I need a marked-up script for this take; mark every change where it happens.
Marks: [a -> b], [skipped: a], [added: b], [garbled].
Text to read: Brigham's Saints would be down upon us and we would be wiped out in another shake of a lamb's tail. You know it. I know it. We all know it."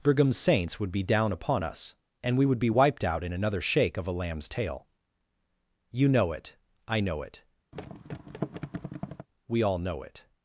Brigham's Saints would be down upon us and we would be wiped out in another shake of a lamb's tail. You know it. I know it. We all know it."